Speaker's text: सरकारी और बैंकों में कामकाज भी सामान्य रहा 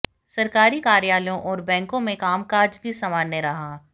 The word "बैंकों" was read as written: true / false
true